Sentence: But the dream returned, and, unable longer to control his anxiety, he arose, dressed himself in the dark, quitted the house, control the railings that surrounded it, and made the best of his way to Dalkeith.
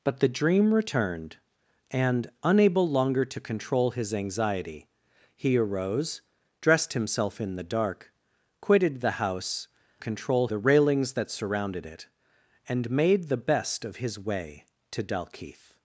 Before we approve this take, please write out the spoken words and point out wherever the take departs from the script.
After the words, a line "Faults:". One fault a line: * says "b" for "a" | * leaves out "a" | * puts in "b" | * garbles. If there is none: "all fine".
But the dream returned, and, unable longer to control his anxiety, he arose, dressed himself in the dark, quitted the house, control the railings that surrounded it, and made the best of his way to Dalkeith.
Faults:
all fine